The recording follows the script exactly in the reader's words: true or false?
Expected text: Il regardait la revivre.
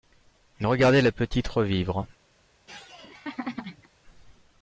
false